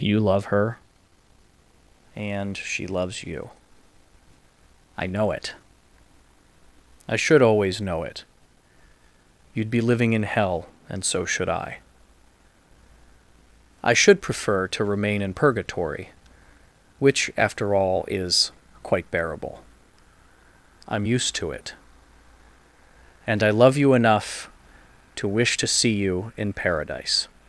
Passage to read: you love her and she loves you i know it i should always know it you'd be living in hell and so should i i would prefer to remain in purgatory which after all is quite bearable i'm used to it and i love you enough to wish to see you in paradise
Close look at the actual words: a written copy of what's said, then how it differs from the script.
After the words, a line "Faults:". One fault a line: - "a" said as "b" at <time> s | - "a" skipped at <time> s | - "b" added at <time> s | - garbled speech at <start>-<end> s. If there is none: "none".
you love her and she loves you i know it i should always know it you'd be living in hell and so should i i should prefer to remain in purgatory which after all is quite bearable i'm used to it and i love you enough to wish to see you in paradise
Faults:
- "would" said as "should" at 13.9 s